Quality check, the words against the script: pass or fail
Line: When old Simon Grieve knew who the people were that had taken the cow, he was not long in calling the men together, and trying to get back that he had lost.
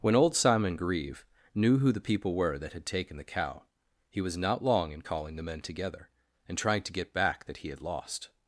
pass